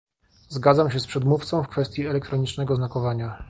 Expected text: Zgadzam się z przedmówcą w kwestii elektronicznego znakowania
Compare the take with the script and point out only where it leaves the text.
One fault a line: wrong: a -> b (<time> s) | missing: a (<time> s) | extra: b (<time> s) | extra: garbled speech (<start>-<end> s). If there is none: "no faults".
no faults